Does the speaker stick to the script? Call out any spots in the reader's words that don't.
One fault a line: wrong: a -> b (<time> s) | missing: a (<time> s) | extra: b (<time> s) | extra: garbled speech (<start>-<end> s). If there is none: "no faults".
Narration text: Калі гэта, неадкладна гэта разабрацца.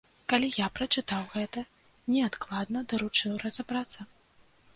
extra: я прачытаў (0.6 s)
wrong: гэта -> даручыў (2.9 s)